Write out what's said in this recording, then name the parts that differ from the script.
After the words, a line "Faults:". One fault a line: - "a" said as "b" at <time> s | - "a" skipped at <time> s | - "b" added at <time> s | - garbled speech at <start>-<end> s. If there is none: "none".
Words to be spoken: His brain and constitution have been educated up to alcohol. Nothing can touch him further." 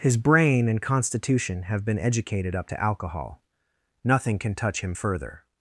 His brain and constitution have been educated up to alcohol. Nothing can touch him further."
Faults:
none